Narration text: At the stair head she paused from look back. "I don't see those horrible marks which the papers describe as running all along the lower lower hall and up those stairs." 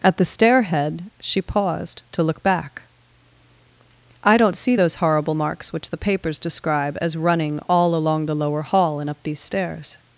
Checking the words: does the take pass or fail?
fail